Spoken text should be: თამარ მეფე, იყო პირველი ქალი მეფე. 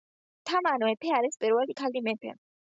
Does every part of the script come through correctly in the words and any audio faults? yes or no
no